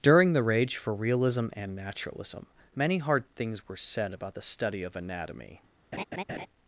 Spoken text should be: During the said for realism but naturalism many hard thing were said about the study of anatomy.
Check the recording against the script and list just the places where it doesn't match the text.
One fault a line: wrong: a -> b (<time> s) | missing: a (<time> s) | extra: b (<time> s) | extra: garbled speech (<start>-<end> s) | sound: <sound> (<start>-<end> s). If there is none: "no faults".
wrong: said -> rage (0.4 s)
wrong: but -> and (1.5 s)
wrong: thing -> things (3.4 s)
sound: laugh (5.9-6.5 s)